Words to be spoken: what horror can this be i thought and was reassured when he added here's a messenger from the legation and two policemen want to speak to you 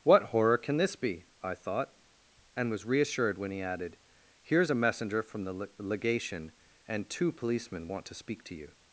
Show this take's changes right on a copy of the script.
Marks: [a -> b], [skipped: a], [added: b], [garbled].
what horror can this be i thought and was reassured when he added here's a messenger from the legation and two policemen want to speak to you